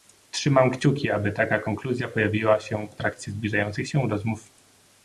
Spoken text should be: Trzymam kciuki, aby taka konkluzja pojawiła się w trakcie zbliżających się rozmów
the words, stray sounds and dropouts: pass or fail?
pass